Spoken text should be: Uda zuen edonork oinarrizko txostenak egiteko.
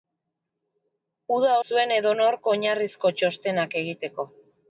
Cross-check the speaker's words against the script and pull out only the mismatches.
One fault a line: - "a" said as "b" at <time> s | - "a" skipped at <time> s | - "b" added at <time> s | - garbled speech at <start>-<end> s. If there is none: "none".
none